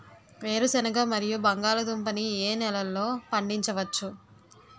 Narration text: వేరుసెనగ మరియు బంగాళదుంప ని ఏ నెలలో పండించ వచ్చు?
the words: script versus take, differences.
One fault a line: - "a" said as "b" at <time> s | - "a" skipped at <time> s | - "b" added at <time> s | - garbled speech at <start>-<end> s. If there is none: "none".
none